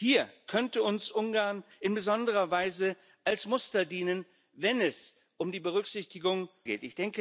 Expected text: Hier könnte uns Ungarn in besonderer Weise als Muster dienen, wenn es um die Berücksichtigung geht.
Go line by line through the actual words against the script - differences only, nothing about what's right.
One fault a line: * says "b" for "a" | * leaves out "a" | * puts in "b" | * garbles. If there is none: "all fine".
all fine